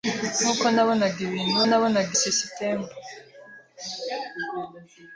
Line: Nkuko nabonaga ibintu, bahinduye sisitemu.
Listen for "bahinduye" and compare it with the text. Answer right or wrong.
wrong